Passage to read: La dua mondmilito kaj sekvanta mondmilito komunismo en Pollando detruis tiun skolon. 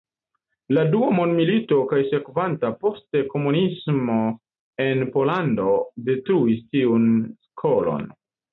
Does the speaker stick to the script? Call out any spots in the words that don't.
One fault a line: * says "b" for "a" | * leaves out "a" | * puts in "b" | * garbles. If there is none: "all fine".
* says "poste" for "mondmilito"